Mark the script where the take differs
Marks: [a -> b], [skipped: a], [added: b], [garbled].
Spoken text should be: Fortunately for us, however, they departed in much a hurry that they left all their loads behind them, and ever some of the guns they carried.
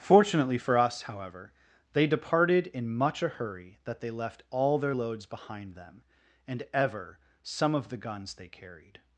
Fortunately for us, however, they departed in much a hurry that they left all their loads behind them, and ever some of the guns they carried.